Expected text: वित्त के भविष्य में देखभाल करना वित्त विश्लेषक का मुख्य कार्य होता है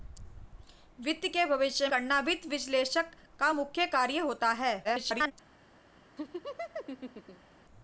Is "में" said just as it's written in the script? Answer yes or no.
no